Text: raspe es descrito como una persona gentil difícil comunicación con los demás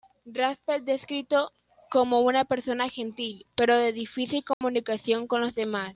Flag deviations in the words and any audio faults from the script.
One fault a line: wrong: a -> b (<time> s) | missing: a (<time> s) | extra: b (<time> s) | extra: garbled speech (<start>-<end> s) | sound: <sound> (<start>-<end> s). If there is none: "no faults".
extra: pero de (3.6 s)
sound: dropout (4.5-4.6 s)